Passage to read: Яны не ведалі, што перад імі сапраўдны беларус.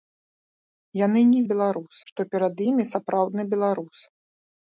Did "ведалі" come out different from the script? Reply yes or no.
yes